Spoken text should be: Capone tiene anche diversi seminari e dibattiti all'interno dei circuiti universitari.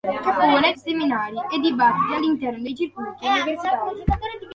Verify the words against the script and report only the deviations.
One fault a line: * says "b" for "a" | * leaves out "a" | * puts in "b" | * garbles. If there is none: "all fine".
* leaves out "tiene anche diversi"